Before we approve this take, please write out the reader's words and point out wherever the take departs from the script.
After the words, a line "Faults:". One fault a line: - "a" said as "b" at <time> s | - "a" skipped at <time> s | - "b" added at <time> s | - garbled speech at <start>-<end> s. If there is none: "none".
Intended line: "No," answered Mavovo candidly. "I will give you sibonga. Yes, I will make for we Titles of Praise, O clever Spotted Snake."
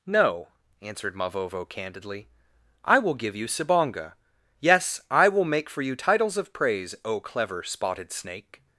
"No," answered Mavovo candidly. "I will give you sibonga. Yes, I will make for you Titles of Praise, O clever Spotted Snake."
Faults:
- "we" said as "you" at 5.8 s